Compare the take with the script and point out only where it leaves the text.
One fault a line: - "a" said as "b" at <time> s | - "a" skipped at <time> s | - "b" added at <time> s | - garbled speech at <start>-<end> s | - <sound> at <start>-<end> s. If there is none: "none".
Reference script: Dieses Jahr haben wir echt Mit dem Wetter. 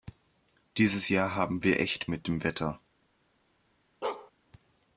- bark at 4.0-4.3 s